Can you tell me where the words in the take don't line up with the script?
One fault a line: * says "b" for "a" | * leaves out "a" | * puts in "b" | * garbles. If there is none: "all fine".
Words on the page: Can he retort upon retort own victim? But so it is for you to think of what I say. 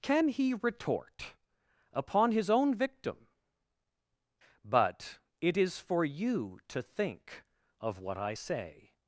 * says "his" for "retort"
* leaves out "so"